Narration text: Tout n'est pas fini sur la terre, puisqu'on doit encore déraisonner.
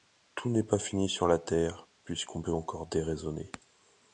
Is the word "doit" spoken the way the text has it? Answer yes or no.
no